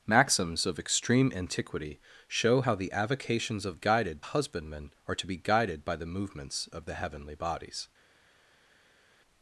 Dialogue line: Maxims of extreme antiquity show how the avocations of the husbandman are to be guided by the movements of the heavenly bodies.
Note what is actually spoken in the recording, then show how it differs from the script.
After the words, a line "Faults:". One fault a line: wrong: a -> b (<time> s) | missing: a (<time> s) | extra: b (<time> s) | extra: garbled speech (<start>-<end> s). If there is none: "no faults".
Maxims of extreme antiquity show how the avocations of guided husbandman are to be guided by the movements of the heavenly bodies.
Faults:
wrong: the -> guided (3.7 s)